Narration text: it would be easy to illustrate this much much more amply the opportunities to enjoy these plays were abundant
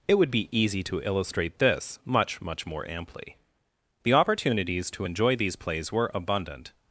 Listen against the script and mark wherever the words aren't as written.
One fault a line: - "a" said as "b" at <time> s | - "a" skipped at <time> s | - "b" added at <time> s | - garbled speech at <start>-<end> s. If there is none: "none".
none